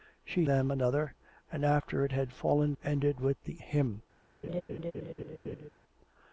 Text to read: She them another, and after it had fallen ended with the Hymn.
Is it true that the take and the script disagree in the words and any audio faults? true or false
true